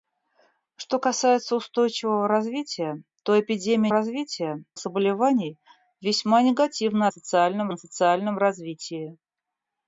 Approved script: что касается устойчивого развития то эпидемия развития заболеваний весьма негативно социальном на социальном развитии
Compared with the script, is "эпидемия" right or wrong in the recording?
right